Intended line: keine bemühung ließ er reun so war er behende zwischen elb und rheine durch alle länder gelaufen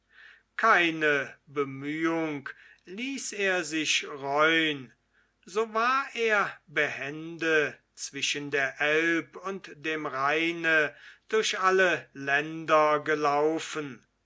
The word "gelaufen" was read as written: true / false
true